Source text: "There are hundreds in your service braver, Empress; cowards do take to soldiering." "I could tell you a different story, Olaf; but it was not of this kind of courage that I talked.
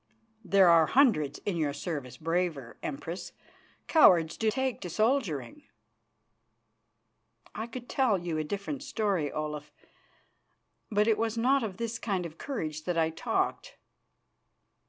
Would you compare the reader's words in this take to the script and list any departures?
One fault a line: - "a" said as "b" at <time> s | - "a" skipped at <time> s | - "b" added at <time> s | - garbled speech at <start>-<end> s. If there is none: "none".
none